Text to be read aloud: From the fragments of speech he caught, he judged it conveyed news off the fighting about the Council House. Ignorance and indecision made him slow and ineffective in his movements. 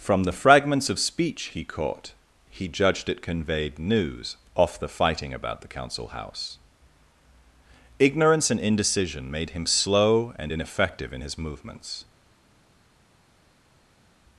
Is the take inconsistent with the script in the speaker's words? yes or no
no